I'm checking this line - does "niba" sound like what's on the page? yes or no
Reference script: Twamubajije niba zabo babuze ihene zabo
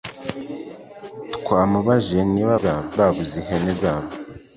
yes